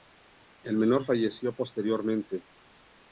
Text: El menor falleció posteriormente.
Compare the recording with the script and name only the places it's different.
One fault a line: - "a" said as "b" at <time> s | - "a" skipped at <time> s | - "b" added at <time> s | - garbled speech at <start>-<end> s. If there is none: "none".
none